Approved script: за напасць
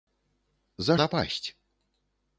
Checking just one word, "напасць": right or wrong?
right